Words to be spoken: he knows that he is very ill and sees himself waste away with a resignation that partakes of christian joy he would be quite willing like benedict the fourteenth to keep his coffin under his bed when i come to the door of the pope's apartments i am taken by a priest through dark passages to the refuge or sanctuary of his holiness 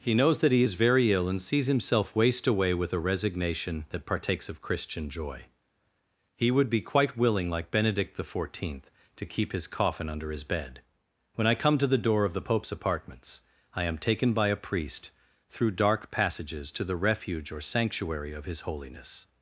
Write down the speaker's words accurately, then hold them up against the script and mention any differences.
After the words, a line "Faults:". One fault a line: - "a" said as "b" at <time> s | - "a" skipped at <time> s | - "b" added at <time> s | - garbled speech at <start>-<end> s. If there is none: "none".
he knows that he is very ill and sees himself waste away with a resignation that partakes of christian joy he would be quite willing like benedict the fourteenth to keep his coffin under his bed when i come to the door of the pope's apartments i am taken by a priest through dark passages to the refuge or sanctuary of his holiness
Faults:
none